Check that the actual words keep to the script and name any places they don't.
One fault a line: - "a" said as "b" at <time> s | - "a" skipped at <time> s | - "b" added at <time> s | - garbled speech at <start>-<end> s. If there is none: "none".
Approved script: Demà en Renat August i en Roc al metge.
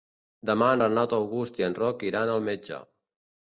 - "iran" added at 2.1 s